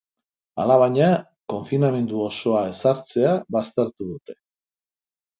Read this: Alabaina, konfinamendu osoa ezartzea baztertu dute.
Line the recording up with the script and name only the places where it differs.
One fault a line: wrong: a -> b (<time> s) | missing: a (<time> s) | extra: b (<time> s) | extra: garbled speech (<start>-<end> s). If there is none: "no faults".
no faults